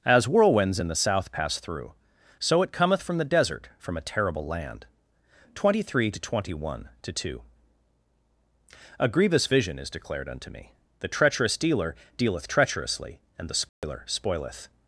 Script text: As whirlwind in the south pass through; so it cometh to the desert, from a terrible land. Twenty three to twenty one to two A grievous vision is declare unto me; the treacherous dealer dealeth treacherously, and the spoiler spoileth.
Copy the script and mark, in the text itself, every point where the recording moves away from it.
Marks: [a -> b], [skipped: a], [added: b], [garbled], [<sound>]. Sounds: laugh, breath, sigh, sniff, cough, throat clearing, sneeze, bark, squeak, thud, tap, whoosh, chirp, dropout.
As [whirlwind -> whirlwinds] in the south pass through; so it cometh [to -> from] the desert, from a terrible land. Twenty three to twenty one to two A grievous vision is [declare -> declared] unto me; the treacherous dealer dealeth treacherously, and the spoiler [dropout] spoileth.